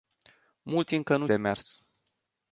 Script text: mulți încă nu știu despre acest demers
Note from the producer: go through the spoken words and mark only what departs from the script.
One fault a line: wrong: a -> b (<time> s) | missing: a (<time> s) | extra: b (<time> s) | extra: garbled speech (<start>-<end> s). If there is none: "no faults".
missing: știu despre acest (1.3 s)